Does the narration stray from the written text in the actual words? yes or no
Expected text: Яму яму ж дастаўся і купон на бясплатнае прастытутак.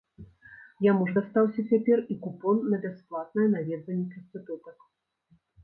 yes